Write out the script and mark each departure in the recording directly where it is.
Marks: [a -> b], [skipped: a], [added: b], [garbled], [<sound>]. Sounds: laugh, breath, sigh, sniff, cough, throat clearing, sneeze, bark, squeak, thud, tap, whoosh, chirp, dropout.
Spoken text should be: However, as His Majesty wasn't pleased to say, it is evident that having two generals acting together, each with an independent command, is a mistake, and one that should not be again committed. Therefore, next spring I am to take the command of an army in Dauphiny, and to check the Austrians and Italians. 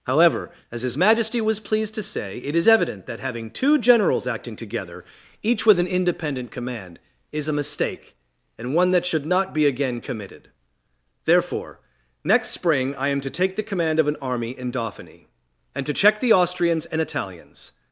However, as His Majesty [wasn't -> was] pleased to say, it is evident that having two generals acting together, each with an independent command, is a mistake, and one that should not be again committed. Therefore, next spring I am to take the command of an army in Dauphiny, and to check the Austrians and Italians.